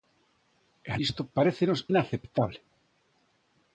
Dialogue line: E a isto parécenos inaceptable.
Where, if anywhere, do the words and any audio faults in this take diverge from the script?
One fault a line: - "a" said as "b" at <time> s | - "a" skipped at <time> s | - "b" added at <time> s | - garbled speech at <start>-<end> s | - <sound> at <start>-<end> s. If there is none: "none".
none